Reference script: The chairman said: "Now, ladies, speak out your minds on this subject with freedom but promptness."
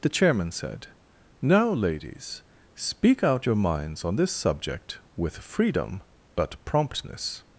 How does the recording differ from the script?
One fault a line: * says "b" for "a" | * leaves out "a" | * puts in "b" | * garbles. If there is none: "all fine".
all fine